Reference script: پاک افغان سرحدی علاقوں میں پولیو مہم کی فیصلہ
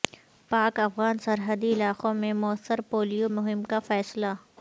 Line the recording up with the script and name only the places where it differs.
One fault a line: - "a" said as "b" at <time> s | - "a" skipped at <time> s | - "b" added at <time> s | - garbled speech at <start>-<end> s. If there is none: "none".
- "موثر" added at 2.4 s
- "کی" said as "کا" at 3.6 s